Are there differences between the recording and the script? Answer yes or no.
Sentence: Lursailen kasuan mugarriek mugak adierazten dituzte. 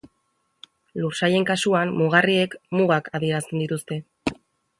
no